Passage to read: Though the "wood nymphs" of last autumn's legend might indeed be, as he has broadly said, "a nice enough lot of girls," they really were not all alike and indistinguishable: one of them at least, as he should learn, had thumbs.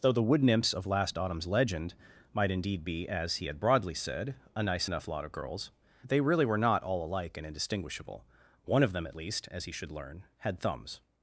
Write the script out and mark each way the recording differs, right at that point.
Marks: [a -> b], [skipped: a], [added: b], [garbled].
Though the "wood nymphs" of last autumn's legend might indeed be, as he [has -> had] broadly said, "a nice enough lot of girls," they really were not all alike and indistinguishable: one of them at least, as he should learn, had thumbs.